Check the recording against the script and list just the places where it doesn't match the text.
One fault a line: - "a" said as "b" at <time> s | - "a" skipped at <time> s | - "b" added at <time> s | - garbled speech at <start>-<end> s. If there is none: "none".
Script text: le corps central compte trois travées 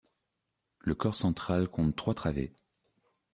none